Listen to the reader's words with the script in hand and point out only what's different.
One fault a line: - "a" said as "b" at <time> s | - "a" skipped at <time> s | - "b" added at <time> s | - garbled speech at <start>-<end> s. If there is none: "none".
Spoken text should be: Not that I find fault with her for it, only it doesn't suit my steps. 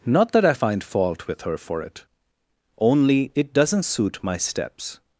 none